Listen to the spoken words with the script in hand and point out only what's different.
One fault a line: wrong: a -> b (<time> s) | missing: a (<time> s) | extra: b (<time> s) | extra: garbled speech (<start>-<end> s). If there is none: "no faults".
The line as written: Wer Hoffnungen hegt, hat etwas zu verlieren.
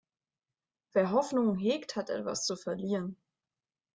no faults